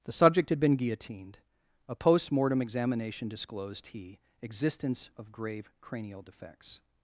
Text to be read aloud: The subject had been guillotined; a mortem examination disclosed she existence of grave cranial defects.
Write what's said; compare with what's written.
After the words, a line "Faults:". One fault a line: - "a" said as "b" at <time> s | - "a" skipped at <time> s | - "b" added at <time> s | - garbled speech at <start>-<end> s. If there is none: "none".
The subject had been guillotined; a post mortem examination disclosed he existence of grave cranial defects.
Faults:
- "post" added at 1.9 s
- "she" said as "he" at 3.9 s